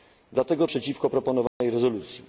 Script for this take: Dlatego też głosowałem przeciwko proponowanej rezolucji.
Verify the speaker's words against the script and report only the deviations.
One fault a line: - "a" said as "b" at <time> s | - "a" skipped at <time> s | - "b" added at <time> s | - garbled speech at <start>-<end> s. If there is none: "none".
- "też głosowałem" skipped at 0.7 s